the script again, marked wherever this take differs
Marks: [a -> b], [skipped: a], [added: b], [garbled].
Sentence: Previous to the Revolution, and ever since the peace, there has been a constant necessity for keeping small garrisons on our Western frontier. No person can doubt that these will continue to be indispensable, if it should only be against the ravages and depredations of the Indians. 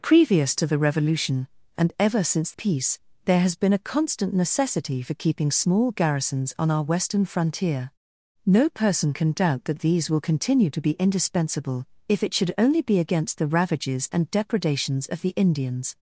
Previous to the Revolution, and ever since [skipped: the] peace, there has been a constant necessity for keeping small garrisons on our Western frontier. No person can doubt that these will continue to be indispensable, if it should only be against the ravages and depredations of the Indians.